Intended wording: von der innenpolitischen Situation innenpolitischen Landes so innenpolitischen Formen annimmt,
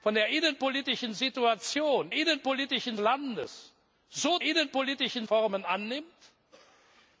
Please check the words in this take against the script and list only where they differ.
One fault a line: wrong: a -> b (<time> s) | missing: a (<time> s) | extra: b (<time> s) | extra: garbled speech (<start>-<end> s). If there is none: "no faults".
no faults